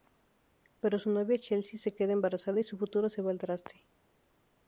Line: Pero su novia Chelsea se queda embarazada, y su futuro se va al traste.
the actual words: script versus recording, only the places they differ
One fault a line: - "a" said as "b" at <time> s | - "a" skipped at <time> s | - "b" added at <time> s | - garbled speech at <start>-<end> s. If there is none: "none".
none